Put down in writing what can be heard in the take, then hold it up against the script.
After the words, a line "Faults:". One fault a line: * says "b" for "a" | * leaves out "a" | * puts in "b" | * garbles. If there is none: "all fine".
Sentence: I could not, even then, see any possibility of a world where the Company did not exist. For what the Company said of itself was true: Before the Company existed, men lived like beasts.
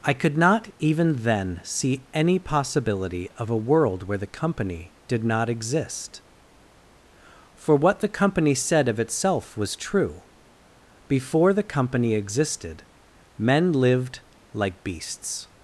I could not, even then, see any possibility of a world where the Company did not exist. For what the Company said of itself was true: Before the Company existed, men lived like beasts.
Faults:
all fine